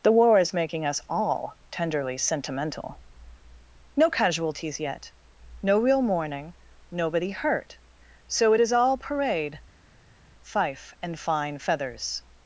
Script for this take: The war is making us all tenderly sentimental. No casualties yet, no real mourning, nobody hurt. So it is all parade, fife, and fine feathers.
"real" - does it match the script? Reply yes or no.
yes